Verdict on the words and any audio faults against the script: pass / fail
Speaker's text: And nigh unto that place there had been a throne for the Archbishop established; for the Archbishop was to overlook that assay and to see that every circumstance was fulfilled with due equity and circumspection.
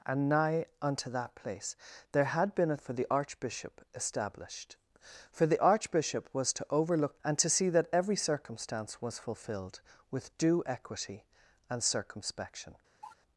fail